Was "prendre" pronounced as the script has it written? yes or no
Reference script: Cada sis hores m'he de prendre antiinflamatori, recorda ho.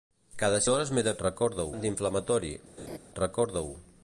no